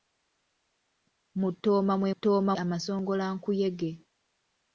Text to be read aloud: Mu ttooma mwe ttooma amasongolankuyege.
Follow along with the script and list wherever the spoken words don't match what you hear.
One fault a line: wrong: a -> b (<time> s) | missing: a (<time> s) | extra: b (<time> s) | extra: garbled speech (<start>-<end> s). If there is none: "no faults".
no faults